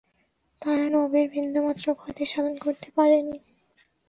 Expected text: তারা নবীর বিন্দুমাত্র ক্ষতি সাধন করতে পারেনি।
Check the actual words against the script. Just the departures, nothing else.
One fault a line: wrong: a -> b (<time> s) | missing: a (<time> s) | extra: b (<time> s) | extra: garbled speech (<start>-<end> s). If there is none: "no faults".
no faults